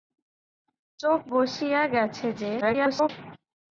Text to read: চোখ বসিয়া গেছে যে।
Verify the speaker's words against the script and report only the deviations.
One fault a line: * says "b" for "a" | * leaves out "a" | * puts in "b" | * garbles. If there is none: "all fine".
* garbles